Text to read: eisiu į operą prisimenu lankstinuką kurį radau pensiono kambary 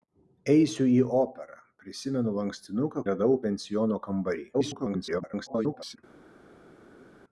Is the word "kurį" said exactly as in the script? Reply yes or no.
no